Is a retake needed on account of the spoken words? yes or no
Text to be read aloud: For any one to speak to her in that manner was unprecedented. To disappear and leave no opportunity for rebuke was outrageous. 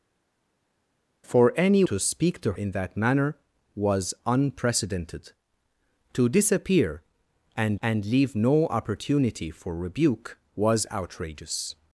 yes